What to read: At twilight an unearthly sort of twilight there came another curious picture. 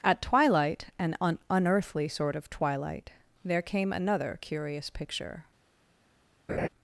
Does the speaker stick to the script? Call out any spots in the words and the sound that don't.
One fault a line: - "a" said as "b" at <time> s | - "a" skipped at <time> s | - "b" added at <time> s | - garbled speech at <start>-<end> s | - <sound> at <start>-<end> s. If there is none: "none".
- "un" added at 1.2 s
- laugh at 6.5-6.7 s